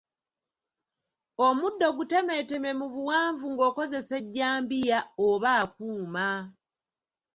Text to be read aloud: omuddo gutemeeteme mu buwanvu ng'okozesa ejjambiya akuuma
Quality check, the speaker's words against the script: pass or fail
fail